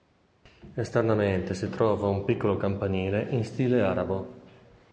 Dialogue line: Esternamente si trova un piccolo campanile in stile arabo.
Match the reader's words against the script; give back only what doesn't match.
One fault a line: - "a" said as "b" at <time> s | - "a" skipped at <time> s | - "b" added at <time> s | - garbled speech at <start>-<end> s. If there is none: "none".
none